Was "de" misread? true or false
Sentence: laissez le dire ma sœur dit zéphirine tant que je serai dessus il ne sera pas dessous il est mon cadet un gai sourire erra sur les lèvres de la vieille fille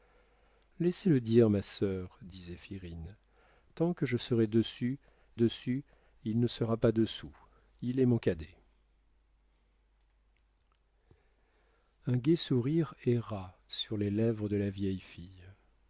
false